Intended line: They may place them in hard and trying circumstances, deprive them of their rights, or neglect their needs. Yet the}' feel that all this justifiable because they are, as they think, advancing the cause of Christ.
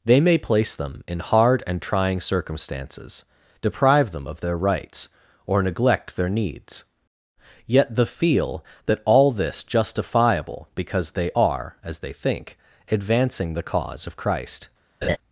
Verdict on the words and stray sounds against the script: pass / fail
fail